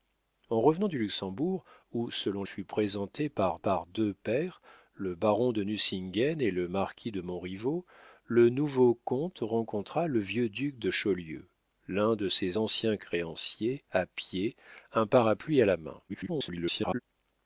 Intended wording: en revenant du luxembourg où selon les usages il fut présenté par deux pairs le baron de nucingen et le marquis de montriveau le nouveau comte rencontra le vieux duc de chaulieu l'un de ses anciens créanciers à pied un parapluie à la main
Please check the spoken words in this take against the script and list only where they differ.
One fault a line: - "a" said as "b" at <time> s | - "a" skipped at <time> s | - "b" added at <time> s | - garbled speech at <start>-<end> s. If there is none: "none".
- "les usages il" skipped at 2.4 s
- "par" added at 3.6 s
- garbled speech at 16.1-17.0 s